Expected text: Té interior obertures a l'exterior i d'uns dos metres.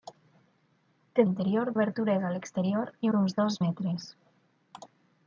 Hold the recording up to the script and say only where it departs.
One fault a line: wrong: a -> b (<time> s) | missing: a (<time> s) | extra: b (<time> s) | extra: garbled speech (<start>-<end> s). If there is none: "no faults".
no faults